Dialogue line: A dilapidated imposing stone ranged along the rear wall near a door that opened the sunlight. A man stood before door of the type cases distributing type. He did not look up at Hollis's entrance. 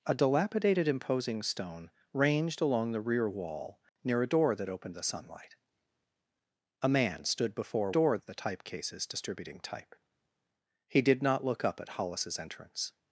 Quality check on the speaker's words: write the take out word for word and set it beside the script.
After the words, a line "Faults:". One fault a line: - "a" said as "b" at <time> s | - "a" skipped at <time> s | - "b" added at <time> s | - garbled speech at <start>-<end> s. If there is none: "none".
A dilapidated imposing stone ranged along the rear wall near a door that opened the sunlight. A man stood before door of the type cases distributing type. He did not look up at Hollis's entrance.
Faults:
none